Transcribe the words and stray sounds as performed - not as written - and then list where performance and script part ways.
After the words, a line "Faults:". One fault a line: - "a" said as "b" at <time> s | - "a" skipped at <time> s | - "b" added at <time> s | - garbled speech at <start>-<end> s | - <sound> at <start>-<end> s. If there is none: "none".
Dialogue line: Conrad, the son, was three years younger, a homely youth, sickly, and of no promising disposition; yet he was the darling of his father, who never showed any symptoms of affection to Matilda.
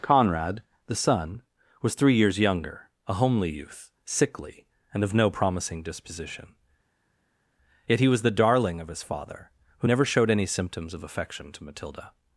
Conrad, the son, was three years younger, a homely youth, sickly, and of no promising disposition; yet he was the darling of his father, who never showed any symptoms of affection to Matilda.
Faults:
none